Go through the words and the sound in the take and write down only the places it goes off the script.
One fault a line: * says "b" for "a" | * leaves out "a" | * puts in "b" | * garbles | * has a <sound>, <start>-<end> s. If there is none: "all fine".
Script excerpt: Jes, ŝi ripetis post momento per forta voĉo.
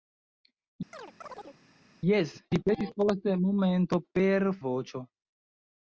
* has a chirp, 0.9-1.6 s
* leaves out "ŝi"
* leaves out "forta"